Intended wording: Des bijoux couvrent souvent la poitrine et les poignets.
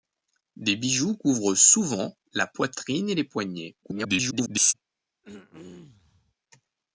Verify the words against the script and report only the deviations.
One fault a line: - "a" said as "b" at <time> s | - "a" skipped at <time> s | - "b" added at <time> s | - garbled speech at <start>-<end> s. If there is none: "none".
- garbled speech at 3.8-4.7 s